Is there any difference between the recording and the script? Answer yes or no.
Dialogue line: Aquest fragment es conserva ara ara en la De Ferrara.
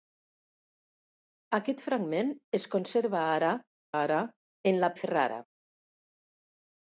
no